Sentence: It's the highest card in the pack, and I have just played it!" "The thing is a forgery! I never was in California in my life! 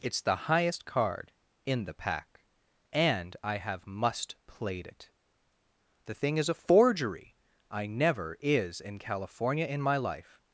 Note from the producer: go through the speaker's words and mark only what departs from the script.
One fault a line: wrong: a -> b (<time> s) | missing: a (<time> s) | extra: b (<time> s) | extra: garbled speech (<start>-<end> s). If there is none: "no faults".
wrong: just -> must (3.9 s)
wrong: was -> is (8.4 s)